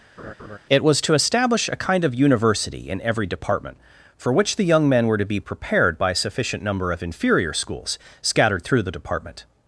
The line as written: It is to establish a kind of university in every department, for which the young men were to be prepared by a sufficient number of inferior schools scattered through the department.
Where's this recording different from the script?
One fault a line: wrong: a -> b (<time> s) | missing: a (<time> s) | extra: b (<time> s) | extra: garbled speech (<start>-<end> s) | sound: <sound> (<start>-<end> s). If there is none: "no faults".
sound: laugh (0.2-0.6 s)
wrong: is -> was (0.8 s)